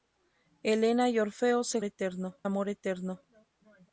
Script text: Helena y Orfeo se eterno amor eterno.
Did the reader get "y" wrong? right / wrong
right